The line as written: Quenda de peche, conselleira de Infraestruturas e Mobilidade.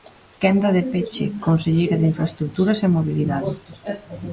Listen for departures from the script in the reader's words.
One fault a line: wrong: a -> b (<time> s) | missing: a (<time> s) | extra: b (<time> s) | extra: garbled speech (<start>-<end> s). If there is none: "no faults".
no faults